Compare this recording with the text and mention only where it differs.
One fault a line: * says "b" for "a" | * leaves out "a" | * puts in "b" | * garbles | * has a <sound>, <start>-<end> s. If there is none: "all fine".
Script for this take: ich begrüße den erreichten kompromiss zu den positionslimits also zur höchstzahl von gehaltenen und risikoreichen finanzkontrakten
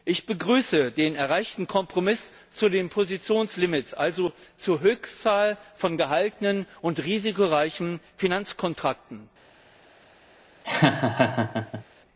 * has a laugh, 10.6-11.8 s